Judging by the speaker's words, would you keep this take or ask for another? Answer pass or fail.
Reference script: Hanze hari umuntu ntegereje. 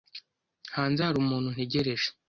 pass